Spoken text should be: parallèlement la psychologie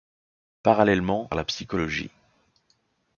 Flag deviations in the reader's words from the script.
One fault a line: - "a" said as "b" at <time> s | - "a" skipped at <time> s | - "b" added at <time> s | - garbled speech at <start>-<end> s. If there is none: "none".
none